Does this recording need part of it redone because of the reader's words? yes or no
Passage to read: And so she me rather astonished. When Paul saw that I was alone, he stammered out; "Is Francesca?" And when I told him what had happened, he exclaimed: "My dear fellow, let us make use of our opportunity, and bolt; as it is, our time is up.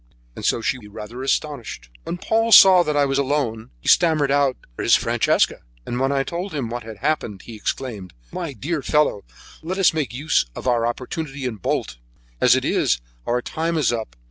no